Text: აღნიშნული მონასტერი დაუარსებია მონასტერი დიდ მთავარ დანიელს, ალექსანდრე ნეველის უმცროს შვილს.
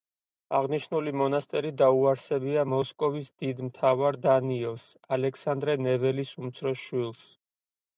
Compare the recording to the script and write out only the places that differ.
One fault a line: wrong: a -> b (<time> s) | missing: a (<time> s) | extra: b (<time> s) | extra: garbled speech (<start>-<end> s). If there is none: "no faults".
wrong: მონასტერი -> მოსკოვის (2.7 s)